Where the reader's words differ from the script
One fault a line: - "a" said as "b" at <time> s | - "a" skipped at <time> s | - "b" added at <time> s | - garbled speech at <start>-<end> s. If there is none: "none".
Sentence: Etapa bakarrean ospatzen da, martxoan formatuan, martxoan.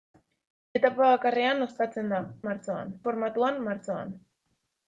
none